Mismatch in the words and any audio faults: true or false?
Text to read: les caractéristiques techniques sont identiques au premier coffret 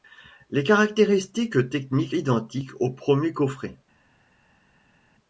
true